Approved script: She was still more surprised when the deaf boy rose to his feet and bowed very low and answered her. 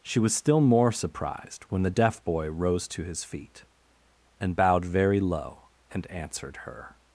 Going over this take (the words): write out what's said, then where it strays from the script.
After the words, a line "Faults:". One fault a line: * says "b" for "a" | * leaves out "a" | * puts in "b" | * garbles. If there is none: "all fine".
She was still more surprised when the deaf boy rose to his feet and bowed very low and answered her.
Faults:
all fine